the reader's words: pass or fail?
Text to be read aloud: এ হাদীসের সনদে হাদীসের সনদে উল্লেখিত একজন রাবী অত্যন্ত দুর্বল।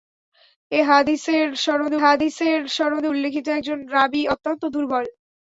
pass